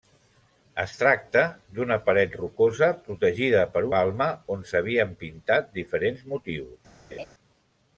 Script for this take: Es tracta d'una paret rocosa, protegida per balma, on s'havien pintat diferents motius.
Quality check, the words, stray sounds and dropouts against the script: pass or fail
fail